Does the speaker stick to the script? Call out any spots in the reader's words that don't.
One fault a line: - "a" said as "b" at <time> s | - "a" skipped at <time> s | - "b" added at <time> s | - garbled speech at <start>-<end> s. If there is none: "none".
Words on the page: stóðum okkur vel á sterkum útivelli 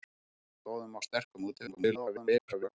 - "okkur vel" skipped at 1.0 s
- garbled speech at 1.7-2.7 s